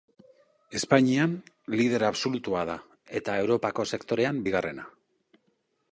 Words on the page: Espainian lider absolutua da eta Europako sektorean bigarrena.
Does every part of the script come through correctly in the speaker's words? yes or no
yes